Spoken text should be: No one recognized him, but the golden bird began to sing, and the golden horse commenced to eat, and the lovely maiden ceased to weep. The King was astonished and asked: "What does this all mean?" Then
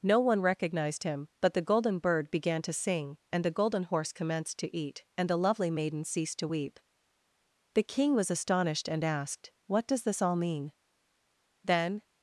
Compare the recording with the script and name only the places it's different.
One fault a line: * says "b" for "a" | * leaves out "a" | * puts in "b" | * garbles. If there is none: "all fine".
all fine